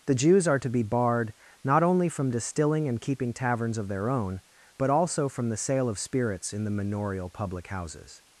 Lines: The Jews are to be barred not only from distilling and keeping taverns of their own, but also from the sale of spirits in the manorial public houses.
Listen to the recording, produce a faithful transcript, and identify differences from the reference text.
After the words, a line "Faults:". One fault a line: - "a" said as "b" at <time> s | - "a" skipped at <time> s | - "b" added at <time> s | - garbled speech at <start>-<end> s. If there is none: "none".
The Jews are to be barred not only from distilling and keeping taverns of their own, but also from the sale of spirits in the manorial public houses.
Faults:
none